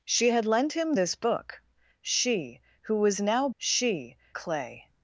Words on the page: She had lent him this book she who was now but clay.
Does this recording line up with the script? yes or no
no